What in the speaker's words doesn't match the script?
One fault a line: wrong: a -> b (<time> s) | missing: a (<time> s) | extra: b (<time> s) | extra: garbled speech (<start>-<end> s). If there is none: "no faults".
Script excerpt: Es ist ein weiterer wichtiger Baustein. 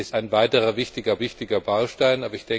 missing: ist (0.1 s)
extra: wichtiger (1.2 s)